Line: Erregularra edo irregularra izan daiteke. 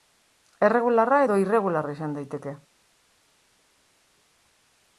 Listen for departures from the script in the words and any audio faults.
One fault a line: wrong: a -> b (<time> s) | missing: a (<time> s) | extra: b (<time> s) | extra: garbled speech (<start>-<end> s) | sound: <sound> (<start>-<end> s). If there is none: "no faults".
no faults